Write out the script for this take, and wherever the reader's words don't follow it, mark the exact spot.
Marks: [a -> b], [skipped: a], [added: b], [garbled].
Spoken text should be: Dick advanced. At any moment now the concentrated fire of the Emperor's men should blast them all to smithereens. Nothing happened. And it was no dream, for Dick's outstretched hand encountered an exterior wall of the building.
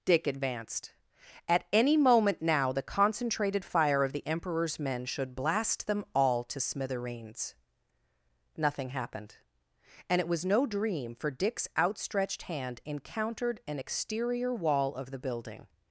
Dick advanced. At any moment now the concentrated fire of the Emperor's men should blast them all to smithereens. Nothing happened. And it was no dream, for Dick's outstretched hand encountered an exterior wall of the building.